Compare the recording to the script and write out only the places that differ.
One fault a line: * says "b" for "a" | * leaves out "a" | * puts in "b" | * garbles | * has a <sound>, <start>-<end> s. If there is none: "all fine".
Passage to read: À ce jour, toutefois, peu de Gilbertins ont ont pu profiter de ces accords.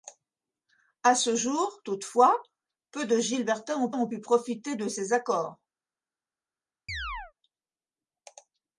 * has a chirp, 6.9-7.3 s